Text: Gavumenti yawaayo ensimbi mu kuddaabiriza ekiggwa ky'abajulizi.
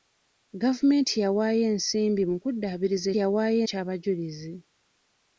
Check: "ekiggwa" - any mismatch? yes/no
yes